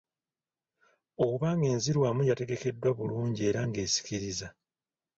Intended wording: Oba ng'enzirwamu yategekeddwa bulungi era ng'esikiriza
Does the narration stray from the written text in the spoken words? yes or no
no